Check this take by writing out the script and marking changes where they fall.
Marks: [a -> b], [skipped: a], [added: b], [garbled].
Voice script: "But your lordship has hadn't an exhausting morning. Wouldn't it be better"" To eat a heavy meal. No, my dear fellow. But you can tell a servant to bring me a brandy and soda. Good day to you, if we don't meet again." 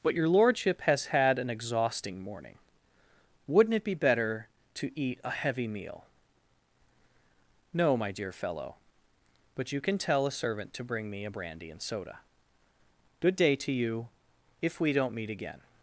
"But your lordship has [hadn't -> had] an exhausting morning. Wouldn't it be better"" To eat a heavy meal. No, my dear fellow. But you can tell a servant to bring me a brandy and soda. Good day to you, if we don't meet again."